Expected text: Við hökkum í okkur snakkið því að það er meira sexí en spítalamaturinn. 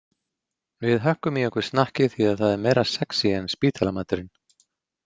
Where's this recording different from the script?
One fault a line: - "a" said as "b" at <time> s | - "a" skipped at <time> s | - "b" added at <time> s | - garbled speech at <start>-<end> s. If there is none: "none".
none